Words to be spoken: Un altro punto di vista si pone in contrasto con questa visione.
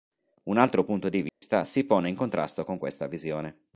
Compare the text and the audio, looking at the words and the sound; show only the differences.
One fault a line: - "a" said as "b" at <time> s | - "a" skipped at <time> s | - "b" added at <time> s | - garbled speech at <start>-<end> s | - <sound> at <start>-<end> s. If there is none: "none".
- dropout at 1.3-1.4 s